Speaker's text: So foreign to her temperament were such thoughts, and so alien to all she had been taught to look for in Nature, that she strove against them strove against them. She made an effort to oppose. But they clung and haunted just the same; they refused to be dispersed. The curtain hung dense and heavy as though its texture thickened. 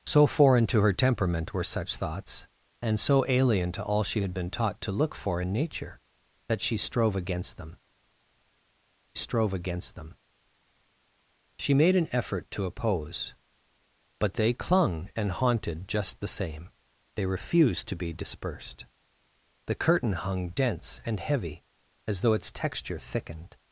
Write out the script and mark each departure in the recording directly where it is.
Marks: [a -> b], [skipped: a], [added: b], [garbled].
So foreign to her temperament were such thoughts, and so alien to all she had been taught to look for in Nature, that she strove against them strove against them. She made an effort to oppose. But they clung and haunted just the same; they refused to be dispersed. The curtain hung dense and heavy as though its texture thickened.